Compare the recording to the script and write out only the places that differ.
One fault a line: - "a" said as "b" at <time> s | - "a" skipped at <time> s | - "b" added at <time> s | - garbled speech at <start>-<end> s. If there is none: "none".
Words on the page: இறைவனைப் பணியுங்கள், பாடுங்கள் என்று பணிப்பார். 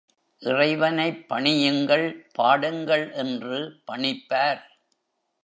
none